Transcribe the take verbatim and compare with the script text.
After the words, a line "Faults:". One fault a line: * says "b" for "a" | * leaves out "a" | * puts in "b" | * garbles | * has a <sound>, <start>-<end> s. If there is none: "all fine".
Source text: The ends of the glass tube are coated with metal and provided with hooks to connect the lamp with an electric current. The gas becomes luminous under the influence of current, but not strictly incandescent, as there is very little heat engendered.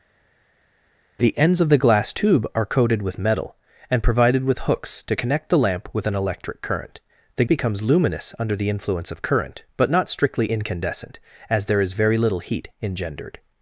The ends of the glass tube are coated with metal and provided with hooks to connect the lamp with an electric current. The becomes luminous under the influence of current, but not strictly incandescent, as there is very little heat engendered.
Faults:
* leaves out "gas"